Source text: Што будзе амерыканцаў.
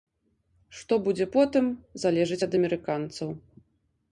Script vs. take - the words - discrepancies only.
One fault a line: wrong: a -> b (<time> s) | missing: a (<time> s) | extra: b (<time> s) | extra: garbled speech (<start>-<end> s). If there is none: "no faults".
extra: потым залежыць ад (1.3 s)